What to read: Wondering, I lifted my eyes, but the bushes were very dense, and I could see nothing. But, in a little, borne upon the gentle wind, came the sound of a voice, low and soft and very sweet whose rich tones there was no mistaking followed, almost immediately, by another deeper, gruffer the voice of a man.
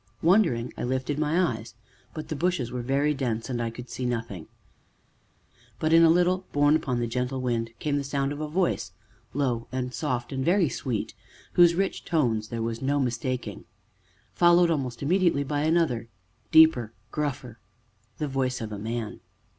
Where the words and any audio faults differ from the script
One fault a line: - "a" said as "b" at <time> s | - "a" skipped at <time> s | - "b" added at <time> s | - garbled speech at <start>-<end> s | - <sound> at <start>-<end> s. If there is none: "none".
none